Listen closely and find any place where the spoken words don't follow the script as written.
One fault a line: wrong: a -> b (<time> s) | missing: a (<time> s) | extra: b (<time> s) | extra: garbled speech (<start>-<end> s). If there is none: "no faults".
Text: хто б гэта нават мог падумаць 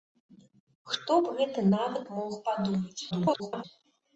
extra: garbled speech (3.1-3.6 s)